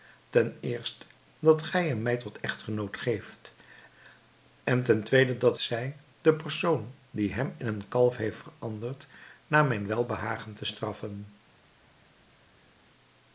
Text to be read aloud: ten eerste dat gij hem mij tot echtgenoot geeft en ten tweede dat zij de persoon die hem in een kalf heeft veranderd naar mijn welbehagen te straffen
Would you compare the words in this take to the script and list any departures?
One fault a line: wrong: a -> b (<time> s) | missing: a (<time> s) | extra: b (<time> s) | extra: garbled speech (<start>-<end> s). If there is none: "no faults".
no faults